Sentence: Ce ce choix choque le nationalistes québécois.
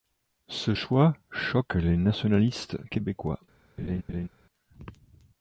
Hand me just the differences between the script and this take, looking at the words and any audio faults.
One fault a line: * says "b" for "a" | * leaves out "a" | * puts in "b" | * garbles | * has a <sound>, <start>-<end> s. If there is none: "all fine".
* leaves out "ce"
* says "les" for "le"
* has a laugh, 3.8-4.3 s